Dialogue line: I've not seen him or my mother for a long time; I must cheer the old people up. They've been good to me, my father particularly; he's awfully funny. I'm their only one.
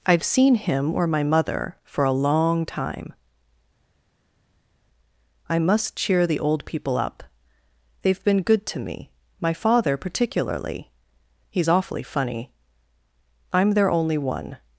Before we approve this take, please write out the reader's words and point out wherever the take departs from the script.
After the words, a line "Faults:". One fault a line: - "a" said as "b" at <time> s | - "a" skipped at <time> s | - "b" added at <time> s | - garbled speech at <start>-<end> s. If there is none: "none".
I've seen him or my mother for a long time; I must cheer the old people up. They've been good to me, my father particularly; he's awfully funny. I'm their only one.
Faults:
- "not" skipped at 0.2 s